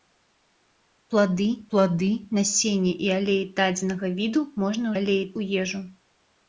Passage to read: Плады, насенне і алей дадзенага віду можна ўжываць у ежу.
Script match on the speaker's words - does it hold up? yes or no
no